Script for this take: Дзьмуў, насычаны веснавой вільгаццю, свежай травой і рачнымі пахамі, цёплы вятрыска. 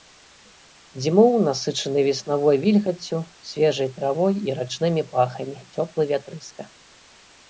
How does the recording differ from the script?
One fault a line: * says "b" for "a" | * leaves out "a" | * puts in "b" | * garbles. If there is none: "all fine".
all fine